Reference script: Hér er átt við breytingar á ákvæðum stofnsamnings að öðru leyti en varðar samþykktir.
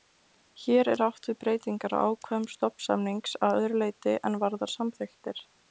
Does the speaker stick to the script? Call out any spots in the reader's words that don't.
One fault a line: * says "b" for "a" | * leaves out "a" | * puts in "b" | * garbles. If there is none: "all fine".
all fine